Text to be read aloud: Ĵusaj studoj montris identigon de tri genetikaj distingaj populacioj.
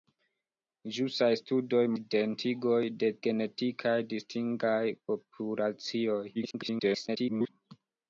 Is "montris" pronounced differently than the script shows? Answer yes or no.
yes